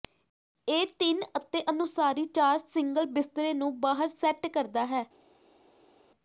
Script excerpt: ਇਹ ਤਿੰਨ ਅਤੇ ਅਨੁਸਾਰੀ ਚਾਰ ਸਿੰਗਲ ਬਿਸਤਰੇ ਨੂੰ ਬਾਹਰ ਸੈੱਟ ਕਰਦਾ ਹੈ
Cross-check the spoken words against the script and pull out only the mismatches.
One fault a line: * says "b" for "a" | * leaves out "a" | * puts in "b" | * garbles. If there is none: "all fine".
all fine